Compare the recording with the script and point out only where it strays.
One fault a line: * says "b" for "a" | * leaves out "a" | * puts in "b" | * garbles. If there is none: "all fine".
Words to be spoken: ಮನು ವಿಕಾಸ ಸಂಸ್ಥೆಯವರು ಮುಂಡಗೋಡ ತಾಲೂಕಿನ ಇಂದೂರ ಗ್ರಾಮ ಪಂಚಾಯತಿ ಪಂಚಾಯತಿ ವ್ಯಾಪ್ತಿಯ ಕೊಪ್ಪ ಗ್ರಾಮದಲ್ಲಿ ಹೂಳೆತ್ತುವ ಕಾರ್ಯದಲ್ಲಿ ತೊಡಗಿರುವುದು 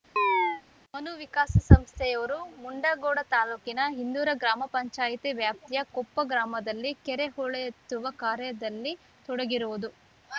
* leaves out "ಪಂಚಾಯತಿ"
* puts in "ಕೆರೆ"